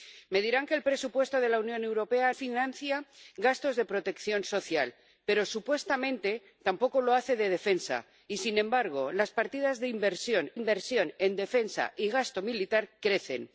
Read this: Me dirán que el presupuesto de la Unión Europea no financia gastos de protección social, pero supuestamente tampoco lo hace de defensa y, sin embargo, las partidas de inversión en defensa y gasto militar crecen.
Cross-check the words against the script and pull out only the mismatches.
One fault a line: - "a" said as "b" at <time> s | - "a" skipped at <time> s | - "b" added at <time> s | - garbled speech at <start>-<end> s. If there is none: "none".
- "no" skipped at 2.3 s
- "inversión" added at 10.5 s